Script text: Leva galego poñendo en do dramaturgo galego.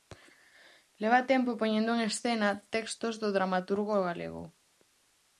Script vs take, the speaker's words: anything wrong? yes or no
yes